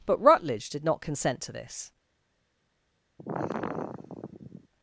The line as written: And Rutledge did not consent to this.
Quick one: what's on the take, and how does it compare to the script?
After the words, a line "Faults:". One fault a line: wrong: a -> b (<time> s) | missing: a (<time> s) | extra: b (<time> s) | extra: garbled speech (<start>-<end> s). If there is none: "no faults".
But Rutledge did not consent to this.
Faults:
wrong: And -> But (0.1 s)